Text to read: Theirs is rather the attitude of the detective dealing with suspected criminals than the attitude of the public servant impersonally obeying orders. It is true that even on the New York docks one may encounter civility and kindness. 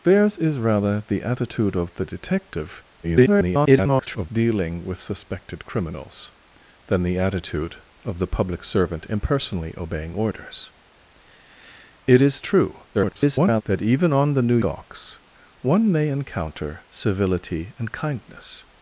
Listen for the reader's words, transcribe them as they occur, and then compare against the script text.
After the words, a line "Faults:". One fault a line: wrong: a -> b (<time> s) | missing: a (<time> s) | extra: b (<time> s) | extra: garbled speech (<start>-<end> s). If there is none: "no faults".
Theirs is rather the attitude of the detective [garbled] dealing with suspected criminals than the attitude of the public servant impersonally obeying orders. It is true [garbled] that even on the New Docks one may encounter civility and kindness.
Faults:
extra: garbled speech (3.0-4.3 s)
extra: garbled speech (12.9-13.6 s)
missing: York (14.6 s)